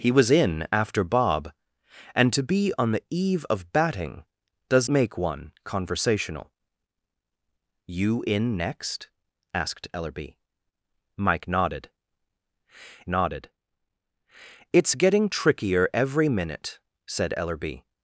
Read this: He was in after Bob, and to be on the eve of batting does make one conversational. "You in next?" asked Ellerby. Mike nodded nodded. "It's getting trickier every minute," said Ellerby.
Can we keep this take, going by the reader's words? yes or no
yes